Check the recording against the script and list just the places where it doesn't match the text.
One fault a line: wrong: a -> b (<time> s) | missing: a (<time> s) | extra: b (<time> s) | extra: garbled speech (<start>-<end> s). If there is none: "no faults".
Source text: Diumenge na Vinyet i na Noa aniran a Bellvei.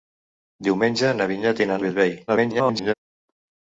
missing: Noa aniran (1.8 s)
extra: garbled speech (2.3-2.9 s)